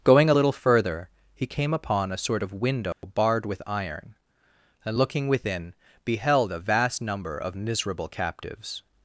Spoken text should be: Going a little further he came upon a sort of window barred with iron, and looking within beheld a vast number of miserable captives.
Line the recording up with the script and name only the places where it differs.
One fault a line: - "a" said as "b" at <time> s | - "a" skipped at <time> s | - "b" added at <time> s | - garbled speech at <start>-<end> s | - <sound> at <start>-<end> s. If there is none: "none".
- dropout at 2.9-3.0 s